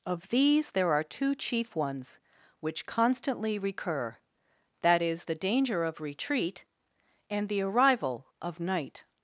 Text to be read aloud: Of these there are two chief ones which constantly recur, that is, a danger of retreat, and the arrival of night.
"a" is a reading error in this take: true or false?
true